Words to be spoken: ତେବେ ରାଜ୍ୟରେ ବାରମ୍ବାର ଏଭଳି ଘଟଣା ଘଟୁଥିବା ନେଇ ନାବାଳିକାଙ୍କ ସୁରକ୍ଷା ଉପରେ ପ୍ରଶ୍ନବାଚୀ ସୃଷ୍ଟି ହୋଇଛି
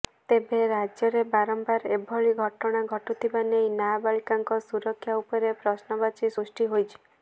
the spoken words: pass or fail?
pass